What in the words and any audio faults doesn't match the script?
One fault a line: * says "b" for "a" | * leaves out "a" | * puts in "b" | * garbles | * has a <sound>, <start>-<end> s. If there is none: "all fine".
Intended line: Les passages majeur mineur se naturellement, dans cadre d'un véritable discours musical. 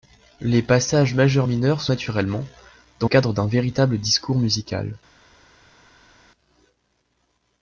all fine